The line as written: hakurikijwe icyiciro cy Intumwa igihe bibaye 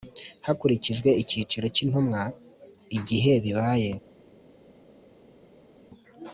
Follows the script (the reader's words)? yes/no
yes